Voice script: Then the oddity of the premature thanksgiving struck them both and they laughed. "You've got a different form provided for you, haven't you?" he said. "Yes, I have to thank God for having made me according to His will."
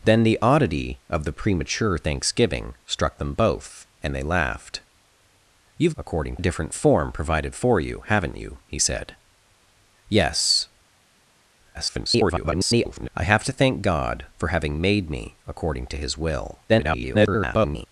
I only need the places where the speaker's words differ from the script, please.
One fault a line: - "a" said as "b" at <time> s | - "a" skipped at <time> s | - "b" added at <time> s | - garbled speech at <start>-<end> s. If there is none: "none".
- "got" said as "according" at 6.0 s
- garbled speech at 11.7-13.1 s
- garbled speech at 16.7-17.9 s